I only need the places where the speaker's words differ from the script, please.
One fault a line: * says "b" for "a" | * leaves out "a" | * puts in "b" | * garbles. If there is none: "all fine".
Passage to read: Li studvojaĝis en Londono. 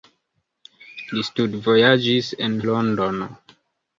all fine